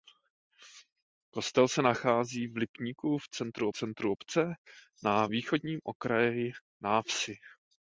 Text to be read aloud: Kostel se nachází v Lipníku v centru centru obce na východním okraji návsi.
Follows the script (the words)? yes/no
yes